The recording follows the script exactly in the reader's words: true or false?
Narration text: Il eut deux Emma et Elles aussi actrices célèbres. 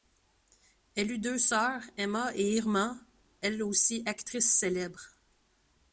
false